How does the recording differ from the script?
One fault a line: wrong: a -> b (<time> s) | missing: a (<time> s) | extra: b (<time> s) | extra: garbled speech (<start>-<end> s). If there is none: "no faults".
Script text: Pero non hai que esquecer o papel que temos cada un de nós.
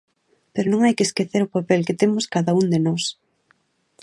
no faults